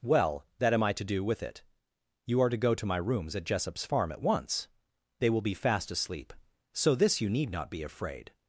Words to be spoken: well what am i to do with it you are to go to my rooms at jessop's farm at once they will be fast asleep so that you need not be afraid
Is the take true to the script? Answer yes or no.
no